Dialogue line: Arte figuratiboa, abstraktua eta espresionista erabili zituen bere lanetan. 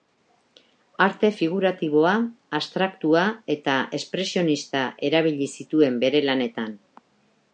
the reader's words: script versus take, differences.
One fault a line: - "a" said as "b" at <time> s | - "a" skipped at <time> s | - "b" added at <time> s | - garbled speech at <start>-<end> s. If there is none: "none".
none